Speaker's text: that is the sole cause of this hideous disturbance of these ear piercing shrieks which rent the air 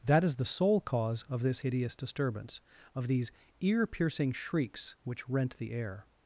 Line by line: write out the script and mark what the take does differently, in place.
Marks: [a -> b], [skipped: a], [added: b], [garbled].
that is the sole cause of this hideous disturbance of these ear piercing shrieks which rent the air